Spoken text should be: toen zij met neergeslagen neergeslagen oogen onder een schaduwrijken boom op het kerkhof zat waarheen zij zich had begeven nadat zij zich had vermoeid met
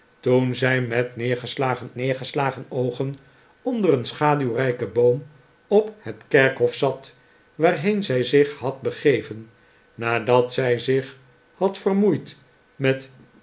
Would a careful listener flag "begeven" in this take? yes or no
no